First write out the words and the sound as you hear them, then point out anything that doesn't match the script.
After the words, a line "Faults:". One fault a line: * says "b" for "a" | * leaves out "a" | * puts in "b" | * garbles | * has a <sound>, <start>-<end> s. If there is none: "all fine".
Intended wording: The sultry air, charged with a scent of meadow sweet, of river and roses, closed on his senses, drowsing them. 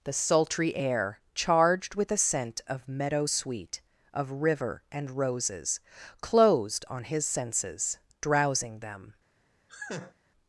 The sultry air, charged with a scent of meadow sweet, of river and roses, closed on his senses, drowsing them.
Faults:
* has a laugh, 9.7-10.1 s